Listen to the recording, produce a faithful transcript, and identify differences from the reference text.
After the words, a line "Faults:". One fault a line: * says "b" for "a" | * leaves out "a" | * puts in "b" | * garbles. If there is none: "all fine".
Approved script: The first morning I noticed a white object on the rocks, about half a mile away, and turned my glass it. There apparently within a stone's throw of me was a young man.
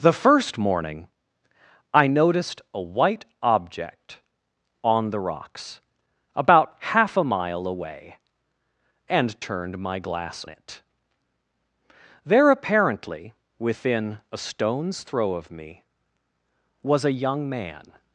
The first morning I noticed a white object on the rocks, about half a mile away, and turned my glass it. There apparently within a stone's throw of me was a young man.
Faults:
all fine